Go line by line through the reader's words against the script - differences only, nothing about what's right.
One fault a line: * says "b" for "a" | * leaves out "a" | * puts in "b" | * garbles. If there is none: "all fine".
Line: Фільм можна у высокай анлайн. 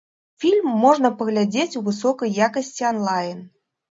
* puts in "паглядзець"
* puts in "якасці"